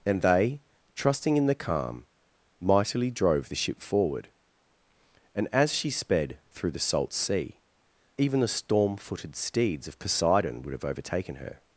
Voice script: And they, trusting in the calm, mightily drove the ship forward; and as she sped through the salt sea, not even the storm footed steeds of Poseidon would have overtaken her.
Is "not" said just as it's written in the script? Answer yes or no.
no